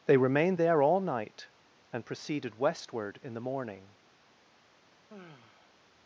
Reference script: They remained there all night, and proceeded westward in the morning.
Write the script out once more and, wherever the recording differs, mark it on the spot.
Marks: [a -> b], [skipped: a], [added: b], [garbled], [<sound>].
They remained there all night, and proceeded westward in the morning. [sigh]